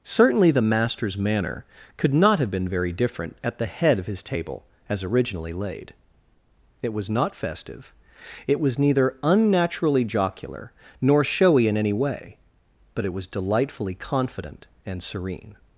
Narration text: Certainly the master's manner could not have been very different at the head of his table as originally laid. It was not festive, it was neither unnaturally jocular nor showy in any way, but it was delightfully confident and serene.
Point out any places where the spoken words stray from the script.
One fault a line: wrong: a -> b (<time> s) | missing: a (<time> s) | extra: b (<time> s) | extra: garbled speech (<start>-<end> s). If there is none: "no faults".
no faults